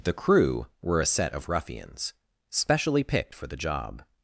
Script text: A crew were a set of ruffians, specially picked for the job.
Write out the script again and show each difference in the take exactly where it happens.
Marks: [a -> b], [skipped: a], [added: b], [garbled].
[A -> The] crew were a set of ruffians, specially picked for the job.